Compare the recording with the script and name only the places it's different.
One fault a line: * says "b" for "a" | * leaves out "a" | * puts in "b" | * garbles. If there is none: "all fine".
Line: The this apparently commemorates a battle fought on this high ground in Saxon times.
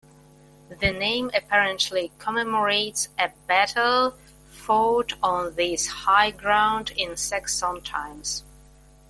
* says "name" for "this"